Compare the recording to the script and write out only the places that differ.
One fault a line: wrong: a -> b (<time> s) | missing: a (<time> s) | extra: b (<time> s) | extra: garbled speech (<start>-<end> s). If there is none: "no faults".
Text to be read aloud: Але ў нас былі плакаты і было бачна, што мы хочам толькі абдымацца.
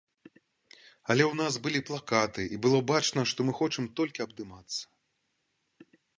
no faults